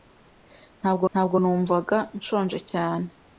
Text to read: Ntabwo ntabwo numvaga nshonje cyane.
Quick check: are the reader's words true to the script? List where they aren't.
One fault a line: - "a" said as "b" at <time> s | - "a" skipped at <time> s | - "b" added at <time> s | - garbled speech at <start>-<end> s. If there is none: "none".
none